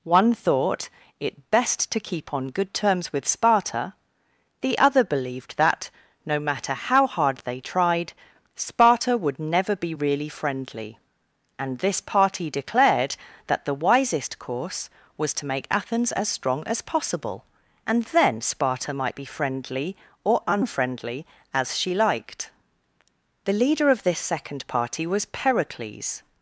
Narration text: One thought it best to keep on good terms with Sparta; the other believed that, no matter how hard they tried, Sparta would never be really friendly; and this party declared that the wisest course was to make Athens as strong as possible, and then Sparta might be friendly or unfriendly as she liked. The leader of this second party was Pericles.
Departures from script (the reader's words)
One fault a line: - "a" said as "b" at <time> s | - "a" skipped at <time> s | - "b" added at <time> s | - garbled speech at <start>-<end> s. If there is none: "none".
none